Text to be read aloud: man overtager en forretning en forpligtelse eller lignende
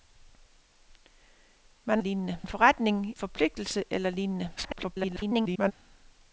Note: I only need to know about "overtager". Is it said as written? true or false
false